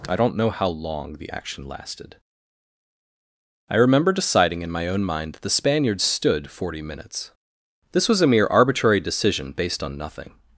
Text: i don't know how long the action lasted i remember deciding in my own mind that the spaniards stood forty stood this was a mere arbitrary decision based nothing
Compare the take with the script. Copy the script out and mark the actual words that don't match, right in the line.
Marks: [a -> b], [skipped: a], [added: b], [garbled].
i don't know how long the action lasted i remember deciding in my own mind that the spaniards stood forty [stood -> minutes] this was a mere arbitrary decision based [added: on] nothing